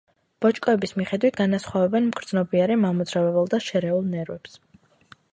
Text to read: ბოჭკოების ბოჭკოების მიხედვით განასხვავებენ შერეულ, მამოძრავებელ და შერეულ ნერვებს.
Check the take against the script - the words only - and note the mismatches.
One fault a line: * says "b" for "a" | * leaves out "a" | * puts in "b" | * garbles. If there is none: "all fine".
* leaves out "ბოჭკოების"
* says "მგრძნობიარე" for "შერეულ"